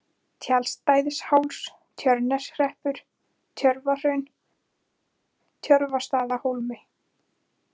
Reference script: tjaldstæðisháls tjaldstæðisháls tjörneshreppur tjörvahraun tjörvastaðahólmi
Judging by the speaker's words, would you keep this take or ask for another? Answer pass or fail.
fail